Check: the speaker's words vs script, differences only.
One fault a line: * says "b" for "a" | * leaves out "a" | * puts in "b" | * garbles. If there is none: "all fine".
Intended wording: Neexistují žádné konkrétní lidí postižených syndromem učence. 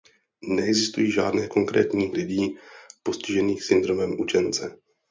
all fine